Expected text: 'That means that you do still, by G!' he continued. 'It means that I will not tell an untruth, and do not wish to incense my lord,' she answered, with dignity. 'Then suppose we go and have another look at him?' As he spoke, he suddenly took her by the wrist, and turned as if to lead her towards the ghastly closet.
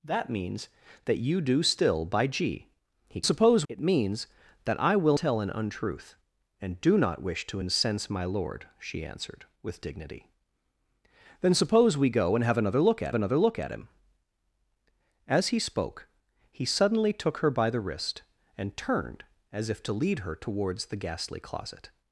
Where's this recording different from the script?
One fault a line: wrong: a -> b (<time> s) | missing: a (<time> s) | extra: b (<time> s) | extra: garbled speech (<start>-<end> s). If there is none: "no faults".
wrong: continued -> suppose (3.2 s)
missing: not (5.2 s)
extra: another look at (13.1 s)